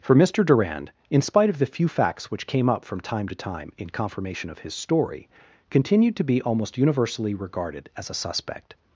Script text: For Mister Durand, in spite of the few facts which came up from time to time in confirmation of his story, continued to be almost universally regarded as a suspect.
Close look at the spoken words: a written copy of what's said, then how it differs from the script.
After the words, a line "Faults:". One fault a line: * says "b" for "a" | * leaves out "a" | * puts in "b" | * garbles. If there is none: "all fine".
For Mister Durand, in spite of the few facts which came up from time to time in confirmation of his story, continued to be almost universally regarded as a suspect.
Faults:
all fine